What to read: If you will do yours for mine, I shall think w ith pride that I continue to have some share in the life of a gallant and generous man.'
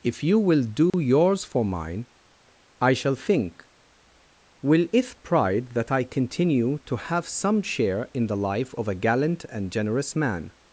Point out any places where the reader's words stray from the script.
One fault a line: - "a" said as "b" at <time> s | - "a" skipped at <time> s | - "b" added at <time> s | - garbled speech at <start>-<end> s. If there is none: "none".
- "w ith" said as "will it" at 4.6 s